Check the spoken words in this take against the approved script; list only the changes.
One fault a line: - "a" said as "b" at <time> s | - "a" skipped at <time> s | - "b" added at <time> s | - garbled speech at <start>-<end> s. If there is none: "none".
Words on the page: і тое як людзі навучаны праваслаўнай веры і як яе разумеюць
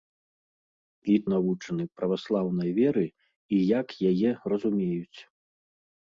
- "тое як людзі" skipped at 1.2 s